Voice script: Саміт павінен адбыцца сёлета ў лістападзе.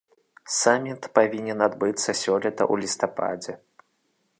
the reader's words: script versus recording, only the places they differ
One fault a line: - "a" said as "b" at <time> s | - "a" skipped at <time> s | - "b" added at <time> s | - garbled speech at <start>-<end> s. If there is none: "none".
none